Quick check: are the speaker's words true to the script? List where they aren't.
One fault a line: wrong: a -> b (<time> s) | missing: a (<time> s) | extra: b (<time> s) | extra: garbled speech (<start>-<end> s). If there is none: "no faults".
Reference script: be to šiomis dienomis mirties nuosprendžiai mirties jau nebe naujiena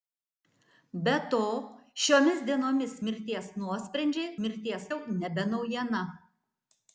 no faults